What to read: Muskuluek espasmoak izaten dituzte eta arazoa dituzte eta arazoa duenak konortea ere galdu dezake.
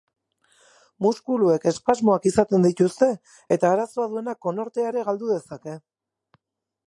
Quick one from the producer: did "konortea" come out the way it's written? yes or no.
yes